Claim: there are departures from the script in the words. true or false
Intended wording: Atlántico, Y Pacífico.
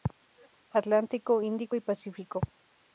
true